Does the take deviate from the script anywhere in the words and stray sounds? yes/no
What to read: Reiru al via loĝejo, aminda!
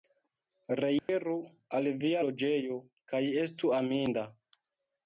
yes